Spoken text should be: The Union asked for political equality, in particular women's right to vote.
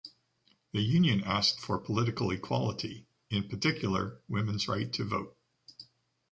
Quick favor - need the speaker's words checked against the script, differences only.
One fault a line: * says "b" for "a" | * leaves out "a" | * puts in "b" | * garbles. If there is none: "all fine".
all fine